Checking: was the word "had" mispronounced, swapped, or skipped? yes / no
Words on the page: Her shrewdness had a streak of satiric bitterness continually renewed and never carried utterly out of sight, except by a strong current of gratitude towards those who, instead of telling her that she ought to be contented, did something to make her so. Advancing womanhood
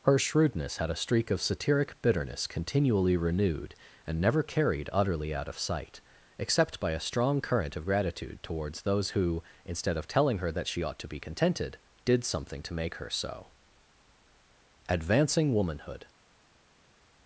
no